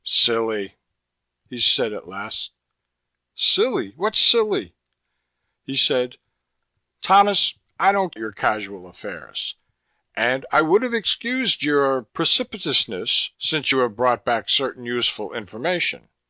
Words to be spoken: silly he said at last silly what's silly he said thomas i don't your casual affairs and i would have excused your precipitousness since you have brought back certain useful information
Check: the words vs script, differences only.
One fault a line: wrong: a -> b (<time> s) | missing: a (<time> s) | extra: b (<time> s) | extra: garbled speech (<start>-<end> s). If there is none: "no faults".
no faults